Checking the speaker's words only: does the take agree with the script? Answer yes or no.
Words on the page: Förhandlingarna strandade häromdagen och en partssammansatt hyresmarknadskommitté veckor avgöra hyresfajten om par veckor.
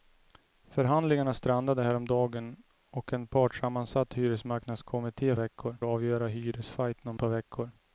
yes